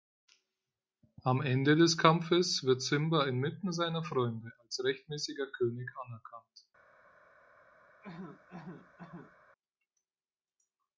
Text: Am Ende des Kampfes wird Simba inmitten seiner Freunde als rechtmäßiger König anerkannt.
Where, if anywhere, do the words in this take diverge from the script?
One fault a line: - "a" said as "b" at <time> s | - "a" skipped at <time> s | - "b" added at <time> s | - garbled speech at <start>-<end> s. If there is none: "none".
none